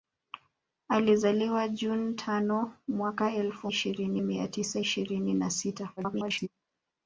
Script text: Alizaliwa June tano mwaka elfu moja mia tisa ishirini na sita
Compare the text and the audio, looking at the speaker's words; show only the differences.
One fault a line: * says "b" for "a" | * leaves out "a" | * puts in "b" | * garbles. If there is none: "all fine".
* says "ishirini" for "moja"
* garbles